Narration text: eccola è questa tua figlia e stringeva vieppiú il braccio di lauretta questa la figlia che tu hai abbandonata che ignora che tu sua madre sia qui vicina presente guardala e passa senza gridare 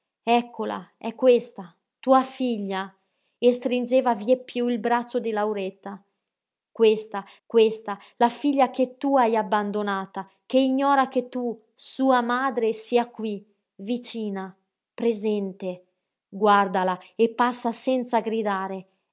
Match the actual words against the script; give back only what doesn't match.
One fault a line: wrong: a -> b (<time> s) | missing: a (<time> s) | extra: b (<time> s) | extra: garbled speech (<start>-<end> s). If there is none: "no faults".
extra: questa (7.5 s)